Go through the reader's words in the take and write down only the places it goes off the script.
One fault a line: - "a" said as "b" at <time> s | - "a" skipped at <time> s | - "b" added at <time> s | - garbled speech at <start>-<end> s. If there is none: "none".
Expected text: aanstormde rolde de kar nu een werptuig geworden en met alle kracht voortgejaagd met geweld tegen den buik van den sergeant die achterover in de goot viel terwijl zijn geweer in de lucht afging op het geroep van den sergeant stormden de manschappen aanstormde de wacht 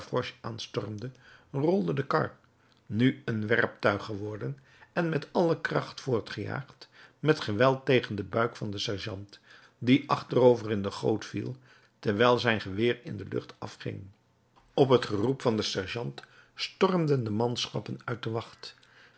- "aanstormde" said as "uit" at 18.0 s